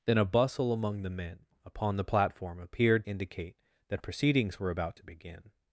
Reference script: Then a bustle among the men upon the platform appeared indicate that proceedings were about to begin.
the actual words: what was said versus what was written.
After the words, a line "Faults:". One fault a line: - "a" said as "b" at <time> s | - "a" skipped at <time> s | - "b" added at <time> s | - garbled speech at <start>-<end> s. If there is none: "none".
Then a bustle among the men upon the platform appeared indicate that proceedings were about to begin.
Faults:
none